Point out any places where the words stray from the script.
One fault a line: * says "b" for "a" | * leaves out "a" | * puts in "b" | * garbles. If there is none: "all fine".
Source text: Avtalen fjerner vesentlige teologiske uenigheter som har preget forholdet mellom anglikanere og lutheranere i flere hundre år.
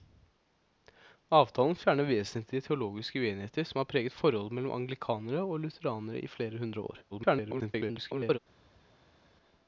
* garbles